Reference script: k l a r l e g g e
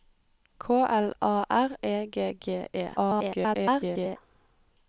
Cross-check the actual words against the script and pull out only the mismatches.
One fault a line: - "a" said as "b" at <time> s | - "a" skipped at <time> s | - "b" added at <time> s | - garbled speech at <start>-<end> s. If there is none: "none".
- "l" skipped at 1.8 s
- garbled speech at 3.0-4.2 s